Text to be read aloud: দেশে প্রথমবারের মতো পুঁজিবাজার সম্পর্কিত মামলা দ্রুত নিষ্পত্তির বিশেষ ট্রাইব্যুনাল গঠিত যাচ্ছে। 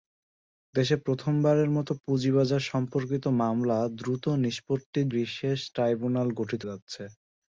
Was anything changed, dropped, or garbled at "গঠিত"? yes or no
no